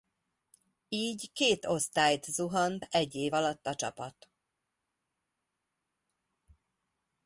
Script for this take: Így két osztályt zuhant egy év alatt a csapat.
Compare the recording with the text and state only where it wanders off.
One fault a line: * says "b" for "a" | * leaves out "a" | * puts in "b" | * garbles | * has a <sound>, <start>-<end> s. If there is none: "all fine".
all fine